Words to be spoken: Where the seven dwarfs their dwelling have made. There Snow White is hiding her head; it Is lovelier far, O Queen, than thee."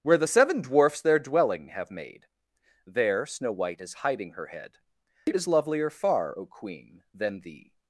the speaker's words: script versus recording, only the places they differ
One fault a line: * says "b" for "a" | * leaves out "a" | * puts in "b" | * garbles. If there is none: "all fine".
all fine